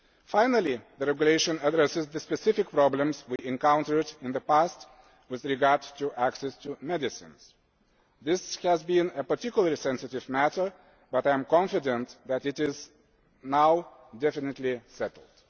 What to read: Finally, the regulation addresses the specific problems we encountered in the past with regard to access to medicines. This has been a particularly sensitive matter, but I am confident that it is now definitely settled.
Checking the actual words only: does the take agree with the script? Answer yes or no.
yes